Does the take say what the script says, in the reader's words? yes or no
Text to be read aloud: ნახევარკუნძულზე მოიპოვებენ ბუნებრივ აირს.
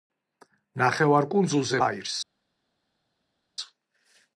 no